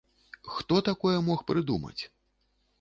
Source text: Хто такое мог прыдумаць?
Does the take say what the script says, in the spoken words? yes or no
yes